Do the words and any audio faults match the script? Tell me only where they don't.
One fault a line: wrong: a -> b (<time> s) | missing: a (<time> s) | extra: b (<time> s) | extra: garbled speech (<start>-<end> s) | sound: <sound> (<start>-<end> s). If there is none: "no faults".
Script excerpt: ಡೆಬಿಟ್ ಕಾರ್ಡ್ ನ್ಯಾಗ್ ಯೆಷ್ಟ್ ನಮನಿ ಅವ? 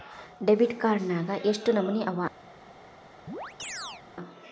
sound: chirp (3.3-4.0 s)